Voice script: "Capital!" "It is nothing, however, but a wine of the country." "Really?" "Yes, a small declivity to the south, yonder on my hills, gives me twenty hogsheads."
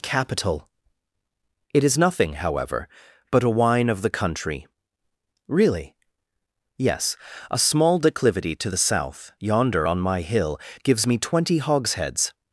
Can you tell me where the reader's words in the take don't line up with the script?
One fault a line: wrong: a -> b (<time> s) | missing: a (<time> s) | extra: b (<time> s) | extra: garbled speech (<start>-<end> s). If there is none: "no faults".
wrong: hills -> hill (10.2 s)